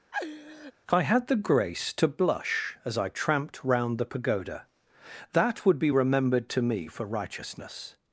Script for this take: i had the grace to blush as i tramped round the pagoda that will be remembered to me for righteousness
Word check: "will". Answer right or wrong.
wrong